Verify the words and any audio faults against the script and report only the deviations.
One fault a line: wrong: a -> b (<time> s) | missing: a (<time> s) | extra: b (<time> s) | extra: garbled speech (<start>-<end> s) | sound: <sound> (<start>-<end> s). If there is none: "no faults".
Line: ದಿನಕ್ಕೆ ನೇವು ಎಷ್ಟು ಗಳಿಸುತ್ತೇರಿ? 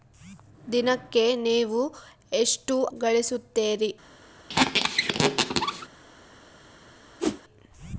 sound: squeak (4.5-5.9 s)
sound: whoosh (7.2-7.4 s)